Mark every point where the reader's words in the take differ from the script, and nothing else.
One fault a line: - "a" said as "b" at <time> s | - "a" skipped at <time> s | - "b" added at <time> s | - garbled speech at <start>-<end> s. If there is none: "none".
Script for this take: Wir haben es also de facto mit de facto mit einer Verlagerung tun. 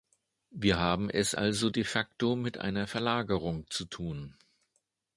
- "de facto mit" skipped at 2.6 s
- "zu" added at 3.7 s